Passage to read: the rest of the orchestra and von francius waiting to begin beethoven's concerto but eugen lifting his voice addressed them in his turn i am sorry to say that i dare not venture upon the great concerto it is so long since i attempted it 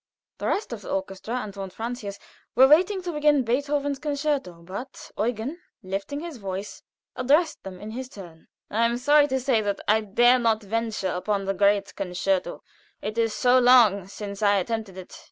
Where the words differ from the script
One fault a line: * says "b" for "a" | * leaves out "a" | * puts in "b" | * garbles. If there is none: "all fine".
* puts in "were"